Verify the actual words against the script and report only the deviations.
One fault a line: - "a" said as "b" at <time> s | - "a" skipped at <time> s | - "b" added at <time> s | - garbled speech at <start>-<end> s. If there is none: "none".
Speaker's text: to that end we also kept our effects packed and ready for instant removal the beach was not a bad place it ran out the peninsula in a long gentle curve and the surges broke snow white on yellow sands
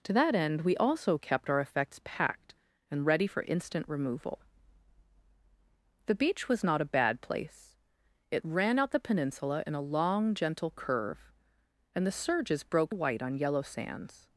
- "snow" skipped at 12.9 s